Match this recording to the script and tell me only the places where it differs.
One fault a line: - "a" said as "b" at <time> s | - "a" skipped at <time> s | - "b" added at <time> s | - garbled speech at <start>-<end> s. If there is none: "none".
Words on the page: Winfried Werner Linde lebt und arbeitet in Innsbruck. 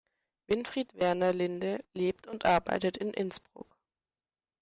none